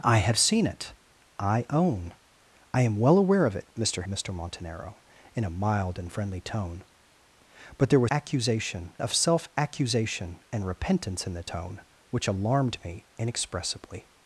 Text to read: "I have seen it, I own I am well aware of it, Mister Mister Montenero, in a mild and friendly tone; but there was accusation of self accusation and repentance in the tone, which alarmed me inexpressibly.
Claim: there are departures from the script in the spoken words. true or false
false